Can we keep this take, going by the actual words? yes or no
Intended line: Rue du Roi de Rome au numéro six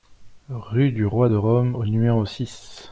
yes